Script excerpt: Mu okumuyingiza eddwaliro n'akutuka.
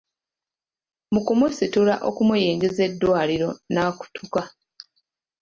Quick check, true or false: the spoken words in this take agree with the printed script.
false